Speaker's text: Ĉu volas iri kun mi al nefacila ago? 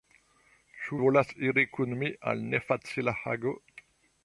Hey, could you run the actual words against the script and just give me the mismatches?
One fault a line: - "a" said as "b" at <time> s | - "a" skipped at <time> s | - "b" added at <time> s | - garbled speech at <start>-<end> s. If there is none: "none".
none